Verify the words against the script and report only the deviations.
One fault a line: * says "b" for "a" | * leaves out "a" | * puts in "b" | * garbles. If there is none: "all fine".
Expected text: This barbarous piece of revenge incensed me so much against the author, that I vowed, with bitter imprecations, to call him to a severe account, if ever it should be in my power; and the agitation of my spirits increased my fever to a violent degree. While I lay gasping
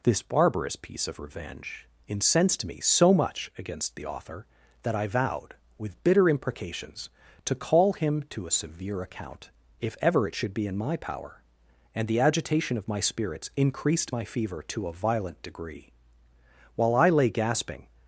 all fine